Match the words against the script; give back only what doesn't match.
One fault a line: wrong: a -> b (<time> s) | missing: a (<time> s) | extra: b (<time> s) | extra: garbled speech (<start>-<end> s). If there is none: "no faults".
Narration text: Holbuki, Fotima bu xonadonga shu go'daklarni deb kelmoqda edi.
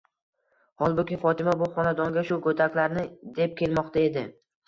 no faults